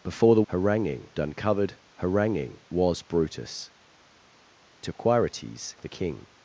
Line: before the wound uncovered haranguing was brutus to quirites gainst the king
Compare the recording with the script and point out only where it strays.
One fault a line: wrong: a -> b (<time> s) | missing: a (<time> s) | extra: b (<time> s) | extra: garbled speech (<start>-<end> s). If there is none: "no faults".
wrong: wound -> haranguing (0.5 s)
missing: gainst (5.7 s)